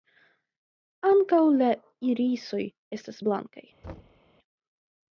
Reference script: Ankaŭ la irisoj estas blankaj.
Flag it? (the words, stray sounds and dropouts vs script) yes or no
yes